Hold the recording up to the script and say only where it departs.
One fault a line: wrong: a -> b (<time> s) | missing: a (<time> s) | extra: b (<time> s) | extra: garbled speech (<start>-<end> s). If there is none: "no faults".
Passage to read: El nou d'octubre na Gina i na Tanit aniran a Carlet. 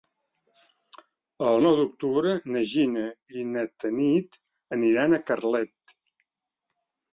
no faults